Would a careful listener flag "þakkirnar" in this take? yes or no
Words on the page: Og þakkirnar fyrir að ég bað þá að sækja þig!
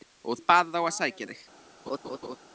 yes